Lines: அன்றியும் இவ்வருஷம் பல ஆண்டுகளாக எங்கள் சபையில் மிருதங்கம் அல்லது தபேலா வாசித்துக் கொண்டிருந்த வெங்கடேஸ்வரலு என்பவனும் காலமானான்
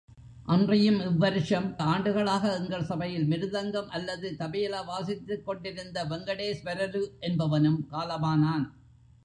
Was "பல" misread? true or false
true